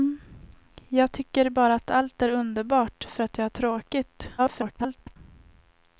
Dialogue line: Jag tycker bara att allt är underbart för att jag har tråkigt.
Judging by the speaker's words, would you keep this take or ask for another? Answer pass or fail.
fail